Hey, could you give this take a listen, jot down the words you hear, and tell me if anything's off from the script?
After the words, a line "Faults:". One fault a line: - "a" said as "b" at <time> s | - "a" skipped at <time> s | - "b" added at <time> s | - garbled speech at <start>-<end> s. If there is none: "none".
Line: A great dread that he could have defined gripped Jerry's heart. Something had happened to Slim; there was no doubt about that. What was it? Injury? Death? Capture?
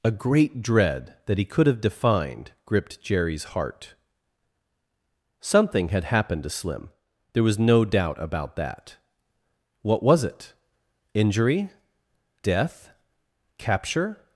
A great dread that he could have defined gripped Jerry's heart. Something had happened to Slim; there was no doubt about that. What was it? Injury? Death? Capture?
Faults:
none